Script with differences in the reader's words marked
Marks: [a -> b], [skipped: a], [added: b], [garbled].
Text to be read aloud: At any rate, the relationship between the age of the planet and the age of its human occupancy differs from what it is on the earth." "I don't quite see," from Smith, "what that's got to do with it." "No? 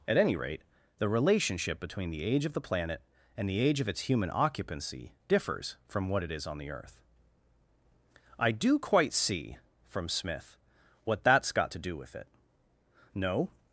At any rate, the relationship between the age of the planet and the age of its human occupancy differs from what it is on the earth." "I [don't -> do] quite see," from Smith, "what that's got to do with it." "No?